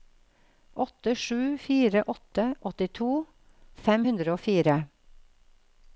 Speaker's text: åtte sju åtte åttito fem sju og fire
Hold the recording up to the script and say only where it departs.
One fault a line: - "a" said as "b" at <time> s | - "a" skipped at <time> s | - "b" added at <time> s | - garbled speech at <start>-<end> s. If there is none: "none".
- "fire" added at 1.6 s
- "sju" said as "hundre" at 4.1 s